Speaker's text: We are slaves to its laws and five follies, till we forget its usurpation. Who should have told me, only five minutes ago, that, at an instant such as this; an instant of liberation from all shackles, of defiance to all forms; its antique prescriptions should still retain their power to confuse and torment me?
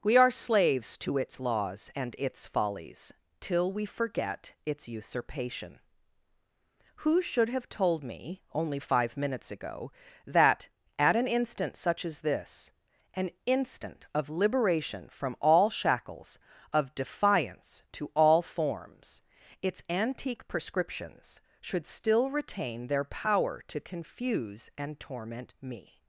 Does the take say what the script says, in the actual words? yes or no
no